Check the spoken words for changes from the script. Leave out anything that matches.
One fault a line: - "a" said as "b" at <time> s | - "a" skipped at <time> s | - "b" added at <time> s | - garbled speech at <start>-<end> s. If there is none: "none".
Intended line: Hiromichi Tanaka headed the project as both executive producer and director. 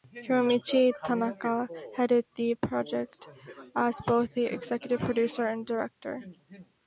- "the" added at 4.3 s